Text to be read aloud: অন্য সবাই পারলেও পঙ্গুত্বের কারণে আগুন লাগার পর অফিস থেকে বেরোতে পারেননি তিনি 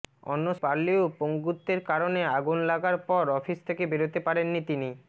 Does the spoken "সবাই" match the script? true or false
false